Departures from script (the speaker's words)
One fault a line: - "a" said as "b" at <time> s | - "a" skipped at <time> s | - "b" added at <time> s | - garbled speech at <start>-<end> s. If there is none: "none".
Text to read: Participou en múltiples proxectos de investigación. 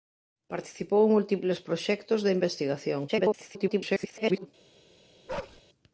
- garbled speech at 3.1-4.5 s